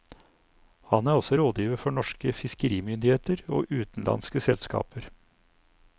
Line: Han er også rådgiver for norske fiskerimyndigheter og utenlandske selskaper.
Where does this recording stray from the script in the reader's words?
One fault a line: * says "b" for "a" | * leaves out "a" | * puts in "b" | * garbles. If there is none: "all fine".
all fine